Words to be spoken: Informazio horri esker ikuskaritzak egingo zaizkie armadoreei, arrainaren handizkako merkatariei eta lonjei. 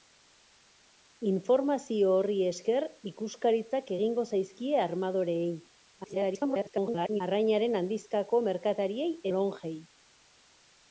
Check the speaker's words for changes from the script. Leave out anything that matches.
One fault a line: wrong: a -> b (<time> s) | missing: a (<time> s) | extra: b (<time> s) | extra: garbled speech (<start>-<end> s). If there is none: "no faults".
extra: garbled speech (6.0-7.2 s)
missing: eta (9.1 s)